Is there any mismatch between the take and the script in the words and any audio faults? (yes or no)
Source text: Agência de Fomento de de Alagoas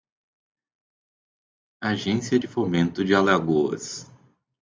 yes